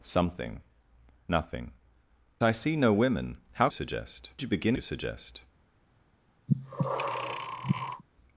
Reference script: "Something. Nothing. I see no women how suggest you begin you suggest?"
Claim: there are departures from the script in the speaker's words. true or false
false